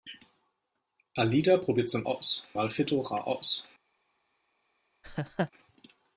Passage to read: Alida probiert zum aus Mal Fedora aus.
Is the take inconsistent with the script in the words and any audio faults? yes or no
yes